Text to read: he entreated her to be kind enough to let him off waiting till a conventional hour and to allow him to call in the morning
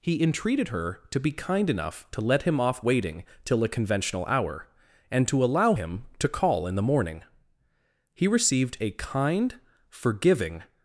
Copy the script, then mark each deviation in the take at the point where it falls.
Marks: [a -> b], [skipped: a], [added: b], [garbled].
he entreated her to be kind enough to let him off waiting till a conventional hour and to allow him to call in the morning [added: he received a kind forgiving]